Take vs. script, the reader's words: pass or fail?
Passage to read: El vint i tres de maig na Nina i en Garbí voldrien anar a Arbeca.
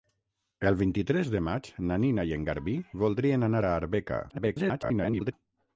fail